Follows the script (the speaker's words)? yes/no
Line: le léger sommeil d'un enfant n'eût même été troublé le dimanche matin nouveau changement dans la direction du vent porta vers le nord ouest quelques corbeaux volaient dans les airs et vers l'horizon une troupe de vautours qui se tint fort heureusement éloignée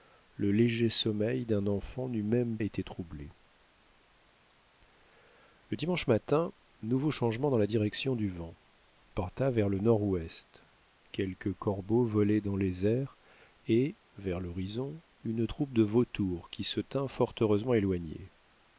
yes